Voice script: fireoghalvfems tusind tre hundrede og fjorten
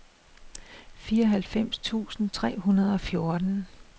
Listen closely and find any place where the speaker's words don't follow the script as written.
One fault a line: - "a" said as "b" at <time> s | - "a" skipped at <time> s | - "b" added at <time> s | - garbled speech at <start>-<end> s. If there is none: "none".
none